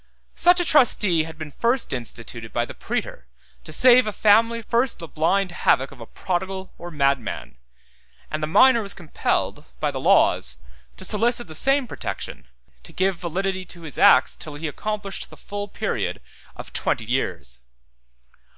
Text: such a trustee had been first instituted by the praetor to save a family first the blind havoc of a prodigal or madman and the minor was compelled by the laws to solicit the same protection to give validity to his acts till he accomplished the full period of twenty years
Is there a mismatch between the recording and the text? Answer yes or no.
no